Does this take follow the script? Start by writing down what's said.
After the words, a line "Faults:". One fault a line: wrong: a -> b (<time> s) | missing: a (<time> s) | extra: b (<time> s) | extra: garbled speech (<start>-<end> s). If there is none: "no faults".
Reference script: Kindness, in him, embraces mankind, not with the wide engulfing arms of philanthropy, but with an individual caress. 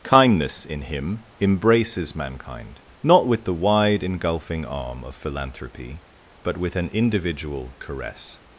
Kindness, in him, embraces mankind, not with the wide engulfing arm of philanthropy, but with an individual caress.
Faults:
wrong: arms -> arm (4.7 s)